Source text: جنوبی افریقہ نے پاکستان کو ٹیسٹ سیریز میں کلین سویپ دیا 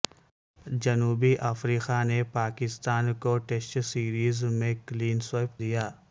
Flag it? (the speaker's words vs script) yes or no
no